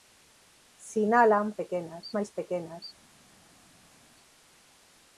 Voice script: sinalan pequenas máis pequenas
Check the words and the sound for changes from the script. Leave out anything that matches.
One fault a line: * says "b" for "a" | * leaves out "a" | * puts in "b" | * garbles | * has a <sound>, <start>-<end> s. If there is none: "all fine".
all fine